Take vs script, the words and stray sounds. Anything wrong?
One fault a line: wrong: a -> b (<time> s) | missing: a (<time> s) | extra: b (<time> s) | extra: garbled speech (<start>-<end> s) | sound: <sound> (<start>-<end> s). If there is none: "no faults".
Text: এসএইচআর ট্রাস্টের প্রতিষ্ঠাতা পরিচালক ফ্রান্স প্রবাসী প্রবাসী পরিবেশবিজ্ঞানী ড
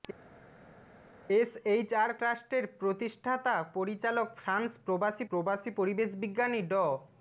no faults